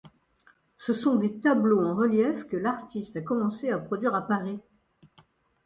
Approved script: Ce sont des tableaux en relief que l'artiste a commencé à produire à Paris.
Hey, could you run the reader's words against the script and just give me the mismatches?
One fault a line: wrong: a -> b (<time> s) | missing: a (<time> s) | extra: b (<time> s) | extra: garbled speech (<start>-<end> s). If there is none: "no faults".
no faults